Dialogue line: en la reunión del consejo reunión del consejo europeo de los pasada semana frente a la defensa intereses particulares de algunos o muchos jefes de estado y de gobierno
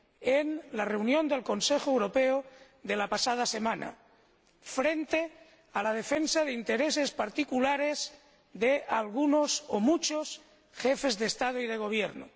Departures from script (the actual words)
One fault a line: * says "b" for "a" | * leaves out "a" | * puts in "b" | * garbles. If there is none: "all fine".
* leaves out "reunión del consejo"
* says "la" for "los"
* puts in "de"